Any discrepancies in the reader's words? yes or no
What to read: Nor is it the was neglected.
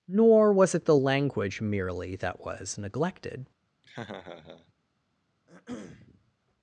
yes